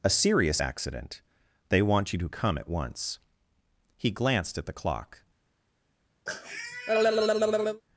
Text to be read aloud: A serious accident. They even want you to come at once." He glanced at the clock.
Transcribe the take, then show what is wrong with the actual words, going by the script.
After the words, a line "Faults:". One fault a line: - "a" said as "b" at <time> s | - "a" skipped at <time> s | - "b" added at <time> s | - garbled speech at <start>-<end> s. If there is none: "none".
A serious accident. They want you to come at once." He glanced at the clock.
Faults:
- "even" skipped at 1.8 s